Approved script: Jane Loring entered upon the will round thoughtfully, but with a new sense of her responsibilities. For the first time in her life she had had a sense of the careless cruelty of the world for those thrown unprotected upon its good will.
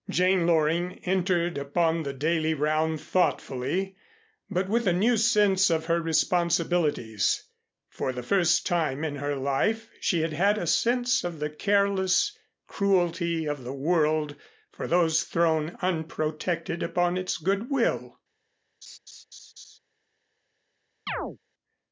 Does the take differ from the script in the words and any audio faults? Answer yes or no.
yes